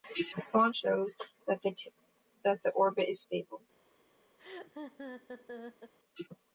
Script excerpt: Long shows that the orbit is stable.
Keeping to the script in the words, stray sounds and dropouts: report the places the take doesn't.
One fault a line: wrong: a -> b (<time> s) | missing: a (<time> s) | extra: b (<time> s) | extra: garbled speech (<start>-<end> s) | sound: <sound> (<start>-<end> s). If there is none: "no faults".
sound: laugh (4.4-5.9 s)